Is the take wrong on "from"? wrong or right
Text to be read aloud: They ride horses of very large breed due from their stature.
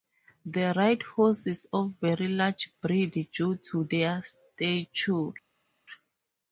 wrong